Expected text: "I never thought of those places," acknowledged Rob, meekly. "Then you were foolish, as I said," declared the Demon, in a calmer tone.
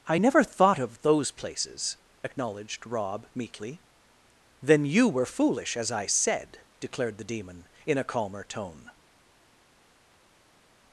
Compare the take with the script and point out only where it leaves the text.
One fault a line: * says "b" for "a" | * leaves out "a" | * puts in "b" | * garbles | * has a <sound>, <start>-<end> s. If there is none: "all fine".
all fine